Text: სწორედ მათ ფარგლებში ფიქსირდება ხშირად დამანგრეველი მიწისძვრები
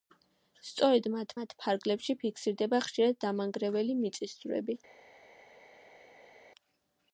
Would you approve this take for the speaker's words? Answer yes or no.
no